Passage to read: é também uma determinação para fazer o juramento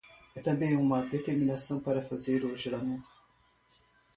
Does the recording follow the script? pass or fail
pass